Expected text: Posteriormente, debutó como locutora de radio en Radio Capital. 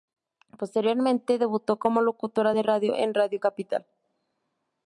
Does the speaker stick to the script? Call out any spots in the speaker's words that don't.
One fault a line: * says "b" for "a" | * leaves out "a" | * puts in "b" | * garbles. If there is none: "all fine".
all fine